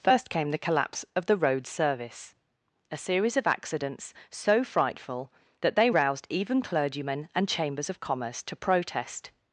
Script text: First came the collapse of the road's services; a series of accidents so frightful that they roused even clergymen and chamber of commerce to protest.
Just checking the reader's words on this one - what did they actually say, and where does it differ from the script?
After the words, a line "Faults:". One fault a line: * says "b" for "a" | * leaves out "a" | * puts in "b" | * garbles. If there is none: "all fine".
First came the collapse of the road's service; a series of accidents so frightful that they roused even clergymen and chambers of commerce to protest.
Faults:
* says "service" for "services"
* says "chambers" for "chamber"